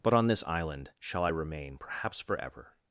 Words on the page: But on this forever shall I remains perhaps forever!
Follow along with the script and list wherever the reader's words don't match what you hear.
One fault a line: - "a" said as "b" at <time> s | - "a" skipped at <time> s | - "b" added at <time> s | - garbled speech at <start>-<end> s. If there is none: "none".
- "forever" said as "island" at 0.5 s
- "remains" said as "remain" at 1.3 s